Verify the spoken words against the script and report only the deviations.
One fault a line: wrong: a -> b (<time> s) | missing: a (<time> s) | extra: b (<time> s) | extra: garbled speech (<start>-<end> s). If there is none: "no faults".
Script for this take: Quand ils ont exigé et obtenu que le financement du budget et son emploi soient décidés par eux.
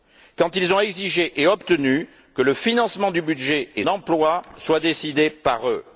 missing: son (3.8 s)